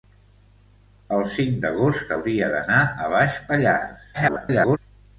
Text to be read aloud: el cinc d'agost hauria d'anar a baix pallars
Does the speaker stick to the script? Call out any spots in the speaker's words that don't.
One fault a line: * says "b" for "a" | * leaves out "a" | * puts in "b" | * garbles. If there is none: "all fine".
* garbles